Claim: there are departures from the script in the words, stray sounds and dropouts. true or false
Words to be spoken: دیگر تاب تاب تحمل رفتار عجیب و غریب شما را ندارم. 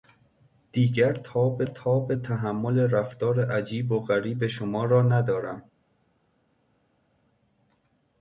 false